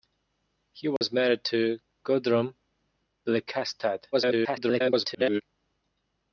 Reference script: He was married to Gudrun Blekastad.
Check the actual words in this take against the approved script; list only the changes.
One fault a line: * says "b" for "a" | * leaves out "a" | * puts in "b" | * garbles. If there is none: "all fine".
* garbles